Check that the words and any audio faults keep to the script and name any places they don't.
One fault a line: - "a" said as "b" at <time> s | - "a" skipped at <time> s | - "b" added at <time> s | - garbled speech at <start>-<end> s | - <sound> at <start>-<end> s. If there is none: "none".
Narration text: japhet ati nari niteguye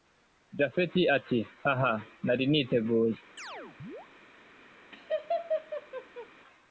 - "haha" added at 1.6 s
- chirp at 3.4-4.1 s
- laugh at 4.9-6.3 s